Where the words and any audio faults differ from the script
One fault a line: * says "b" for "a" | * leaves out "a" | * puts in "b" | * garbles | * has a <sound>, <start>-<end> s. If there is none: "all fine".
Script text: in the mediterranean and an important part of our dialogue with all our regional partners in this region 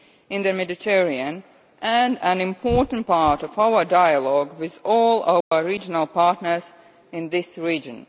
* has a dropout, 5.4-5.5 s